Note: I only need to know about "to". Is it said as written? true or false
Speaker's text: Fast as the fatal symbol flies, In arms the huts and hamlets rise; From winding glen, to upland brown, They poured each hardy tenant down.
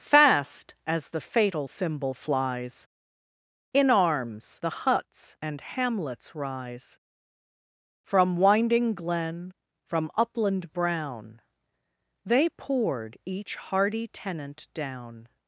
false